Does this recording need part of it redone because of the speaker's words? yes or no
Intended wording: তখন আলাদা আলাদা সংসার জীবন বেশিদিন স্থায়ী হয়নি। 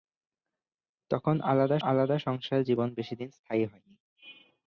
no